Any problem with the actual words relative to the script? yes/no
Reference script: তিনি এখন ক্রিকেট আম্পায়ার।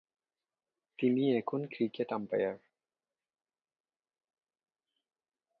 no